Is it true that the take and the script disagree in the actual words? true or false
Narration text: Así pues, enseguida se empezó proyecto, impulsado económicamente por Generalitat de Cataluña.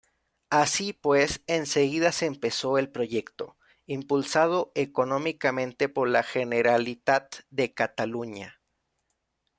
true